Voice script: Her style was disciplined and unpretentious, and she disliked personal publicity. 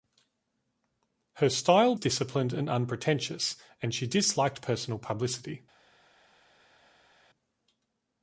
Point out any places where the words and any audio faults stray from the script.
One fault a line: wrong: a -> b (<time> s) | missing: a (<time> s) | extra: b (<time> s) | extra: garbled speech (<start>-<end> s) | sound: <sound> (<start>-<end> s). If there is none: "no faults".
missing: was (1.9 s)